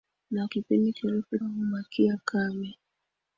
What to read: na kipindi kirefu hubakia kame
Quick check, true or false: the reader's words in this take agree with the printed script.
true